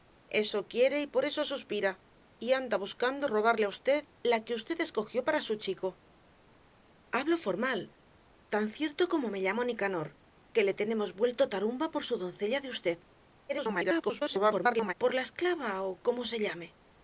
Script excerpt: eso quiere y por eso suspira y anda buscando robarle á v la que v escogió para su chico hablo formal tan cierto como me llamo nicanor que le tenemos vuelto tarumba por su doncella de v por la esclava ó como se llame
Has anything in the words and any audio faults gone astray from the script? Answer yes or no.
yes